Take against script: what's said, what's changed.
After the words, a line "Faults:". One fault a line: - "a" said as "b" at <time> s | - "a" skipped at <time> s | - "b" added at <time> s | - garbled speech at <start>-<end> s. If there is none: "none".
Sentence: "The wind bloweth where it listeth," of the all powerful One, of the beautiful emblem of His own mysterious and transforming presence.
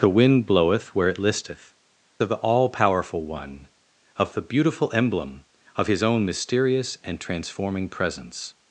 "The wind bloweth where it listeth," of the all powerful One, of the beautiful emblem of His own mysterious and transforming presence.
Faults:
none